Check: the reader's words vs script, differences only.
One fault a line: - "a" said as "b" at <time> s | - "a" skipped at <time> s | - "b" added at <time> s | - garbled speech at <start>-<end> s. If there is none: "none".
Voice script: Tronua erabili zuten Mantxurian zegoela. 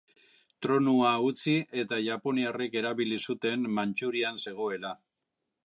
- "utzi eta japoniarrek" added at 1.2 s